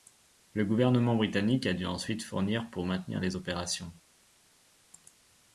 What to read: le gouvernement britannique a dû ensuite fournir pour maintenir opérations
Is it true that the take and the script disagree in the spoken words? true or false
true